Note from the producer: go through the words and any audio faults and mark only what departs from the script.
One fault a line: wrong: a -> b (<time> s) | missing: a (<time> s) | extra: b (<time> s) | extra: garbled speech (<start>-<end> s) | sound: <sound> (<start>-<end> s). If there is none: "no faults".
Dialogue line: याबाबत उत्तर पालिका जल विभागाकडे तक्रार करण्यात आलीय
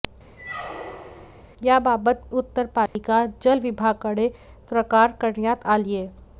sound: squeak (0.4-1.4 s)
sound: dropout (2.9-3.0 s)